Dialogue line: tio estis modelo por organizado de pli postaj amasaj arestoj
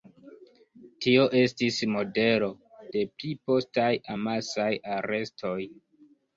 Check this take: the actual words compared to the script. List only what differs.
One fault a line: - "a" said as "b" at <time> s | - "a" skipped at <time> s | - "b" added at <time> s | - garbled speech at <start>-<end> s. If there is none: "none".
- "por organizado" skipped at 2.5 s